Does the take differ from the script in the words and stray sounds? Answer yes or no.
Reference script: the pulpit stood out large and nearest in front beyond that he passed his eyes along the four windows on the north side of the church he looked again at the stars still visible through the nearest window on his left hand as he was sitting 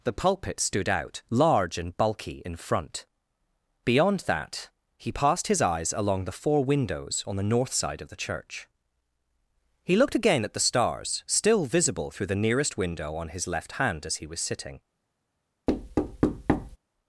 yes